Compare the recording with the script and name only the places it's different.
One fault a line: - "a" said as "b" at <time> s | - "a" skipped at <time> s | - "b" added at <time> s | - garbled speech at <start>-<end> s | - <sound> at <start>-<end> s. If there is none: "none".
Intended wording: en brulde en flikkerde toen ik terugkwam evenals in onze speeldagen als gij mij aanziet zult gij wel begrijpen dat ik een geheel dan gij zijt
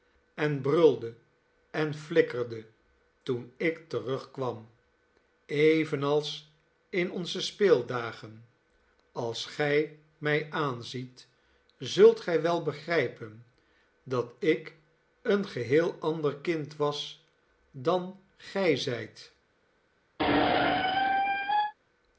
- "ander kind was" added at 16.0 s
- squeak at 20.2-21.7 s